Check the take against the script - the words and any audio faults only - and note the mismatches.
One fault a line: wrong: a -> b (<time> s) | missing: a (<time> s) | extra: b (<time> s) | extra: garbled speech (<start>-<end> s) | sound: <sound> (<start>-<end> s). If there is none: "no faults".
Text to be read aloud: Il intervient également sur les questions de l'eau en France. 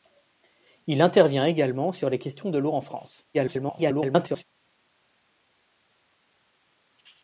extra: garbled speech (3.3-4.4 s)